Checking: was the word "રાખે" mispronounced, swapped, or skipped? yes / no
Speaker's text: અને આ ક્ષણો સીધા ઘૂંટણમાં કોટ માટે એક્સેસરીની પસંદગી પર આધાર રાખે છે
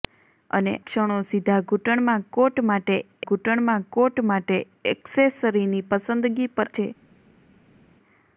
yes